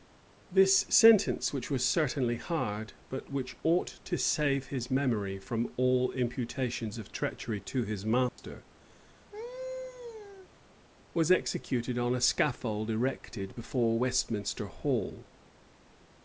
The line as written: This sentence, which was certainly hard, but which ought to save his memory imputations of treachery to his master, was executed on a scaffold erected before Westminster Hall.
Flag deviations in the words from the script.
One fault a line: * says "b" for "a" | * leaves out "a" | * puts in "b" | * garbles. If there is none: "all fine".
* puts in "from all"